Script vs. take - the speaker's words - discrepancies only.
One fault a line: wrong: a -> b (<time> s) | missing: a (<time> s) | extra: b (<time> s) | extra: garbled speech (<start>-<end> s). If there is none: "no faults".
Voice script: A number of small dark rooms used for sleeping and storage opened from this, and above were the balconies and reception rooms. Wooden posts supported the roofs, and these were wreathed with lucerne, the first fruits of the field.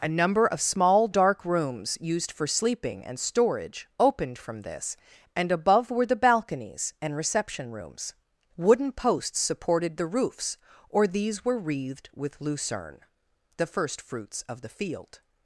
wrong: and -> or (10.9 s)